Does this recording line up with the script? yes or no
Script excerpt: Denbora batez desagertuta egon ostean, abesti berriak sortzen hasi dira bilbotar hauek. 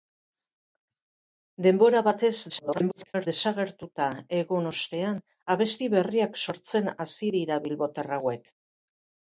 no